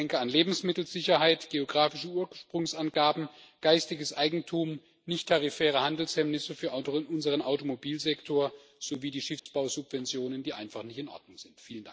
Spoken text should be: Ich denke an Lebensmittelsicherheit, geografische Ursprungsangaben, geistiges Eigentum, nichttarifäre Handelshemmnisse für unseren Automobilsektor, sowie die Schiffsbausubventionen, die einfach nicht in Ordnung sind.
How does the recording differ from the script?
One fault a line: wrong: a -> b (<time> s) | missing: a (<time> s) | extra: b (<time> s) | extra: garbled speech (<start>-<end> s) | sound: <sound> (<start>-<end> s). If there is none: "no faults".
sound: dropout (9.4-9.5 s)